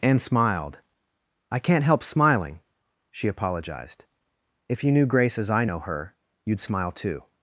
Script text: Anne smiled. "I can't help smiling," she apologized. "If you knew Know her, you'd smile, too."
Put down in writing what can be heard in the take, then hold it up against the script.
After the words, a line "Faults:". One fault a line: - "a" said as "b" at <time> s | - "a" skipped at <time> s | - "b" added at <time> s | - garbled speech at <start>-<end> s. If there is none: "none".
Anne smiled. "I can't help smiling," she apologized. "If you knew Grace as I know her, you'd smile, too."
Faults:
- "Grace as I" added at 5.0 s